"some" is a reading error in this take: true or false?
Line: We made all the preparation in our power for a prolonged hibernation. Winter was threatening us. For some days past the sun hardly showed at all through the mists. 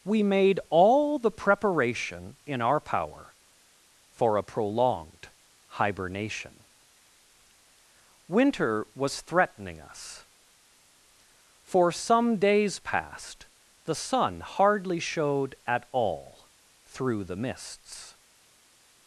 false